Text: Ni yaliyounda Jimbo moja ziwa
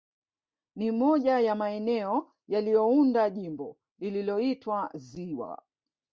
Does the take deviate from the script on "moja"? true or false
true